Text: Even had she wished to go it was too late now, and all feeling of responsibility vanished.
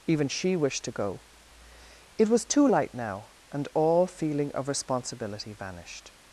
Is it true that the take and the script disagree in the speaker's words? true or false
true